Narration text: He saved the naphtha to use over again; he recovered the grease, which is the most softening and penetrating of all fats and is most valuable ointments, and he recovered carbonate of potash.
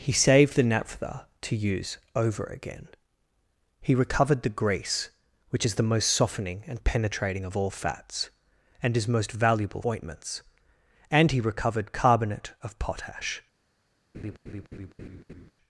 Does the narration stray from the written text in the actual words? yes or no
no